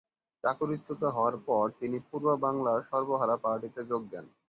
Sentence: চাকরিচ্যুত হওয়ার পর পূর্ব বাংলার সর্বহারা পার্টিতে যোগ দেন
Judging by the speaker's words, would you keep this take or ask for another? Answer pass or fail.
fail